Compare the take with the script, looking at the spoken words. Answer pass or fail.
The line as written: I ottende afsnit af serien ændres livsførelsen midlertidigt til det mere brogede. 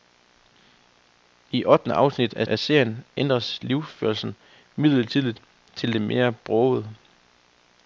fail